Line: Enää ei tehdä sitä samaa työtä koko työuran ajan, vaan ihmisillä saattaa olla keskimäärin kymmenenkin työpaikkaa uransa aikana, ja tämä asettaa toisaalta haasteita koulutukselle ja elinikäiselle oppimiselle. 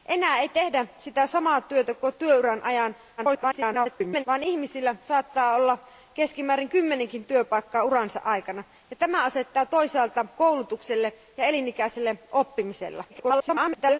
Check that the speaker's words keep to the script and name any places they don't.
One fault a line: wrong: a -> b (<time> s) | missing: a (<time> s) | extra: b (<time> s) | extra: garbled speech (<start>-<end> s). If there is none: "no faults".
extra: garbled speech (3.2-4.2 s)
missing: haasteita (10.2 s)
extra: garbled speech (13.1-14.0 s)